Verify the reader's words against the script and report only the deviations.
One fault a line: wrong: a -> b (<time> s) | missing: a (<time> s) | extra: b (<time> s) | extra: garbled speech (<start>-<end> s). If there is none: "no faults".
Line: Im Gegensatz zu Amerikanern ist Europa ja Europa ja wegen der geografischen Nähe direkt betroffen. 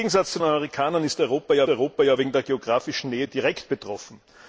no faults